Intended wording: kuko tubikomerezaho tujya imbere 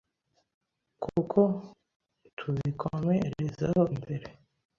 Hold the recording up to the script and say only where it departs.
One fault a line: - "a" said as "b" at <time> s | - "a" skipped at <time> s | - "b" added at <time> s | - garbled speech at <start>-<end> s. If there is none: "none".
- "tujya" skipped at 3.8 s